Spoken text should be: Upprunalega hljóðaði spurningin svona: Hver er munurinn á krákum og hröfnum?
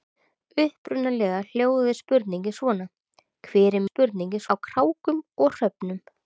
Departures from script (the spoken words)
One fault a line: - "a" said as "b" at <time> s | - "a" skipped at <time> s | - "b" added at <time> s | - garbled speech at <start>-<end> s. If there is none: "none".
- "munurinn" said as "spurningin" at 3.9 s